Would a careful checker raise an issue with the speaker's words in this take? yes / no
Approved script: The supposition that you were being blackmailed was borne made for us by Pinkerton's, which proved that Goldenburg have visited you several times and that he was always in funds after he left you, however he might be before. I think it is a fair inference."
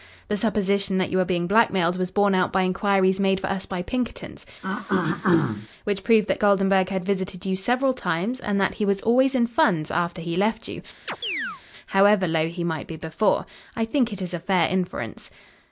yes